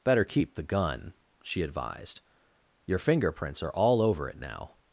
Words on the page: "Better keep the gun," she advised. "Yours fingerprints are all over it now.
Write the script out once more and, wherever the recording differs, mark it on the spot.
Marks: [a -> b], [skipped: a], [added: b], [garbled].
"Better keep the gun," she advised. ["Yours -> Your] fingerprints are all over it now.